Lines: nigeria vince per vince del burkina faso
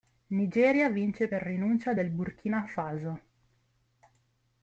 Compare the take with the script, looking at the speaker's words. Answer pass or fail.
fail